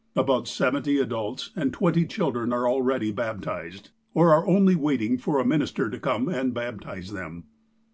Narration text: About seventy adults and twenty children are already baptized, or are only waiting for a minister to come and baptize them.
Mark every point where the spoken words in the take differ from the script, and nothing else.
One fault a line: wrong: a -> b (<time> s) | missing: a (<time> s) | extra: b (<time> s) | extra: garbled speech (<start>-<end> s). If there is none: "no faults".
no faults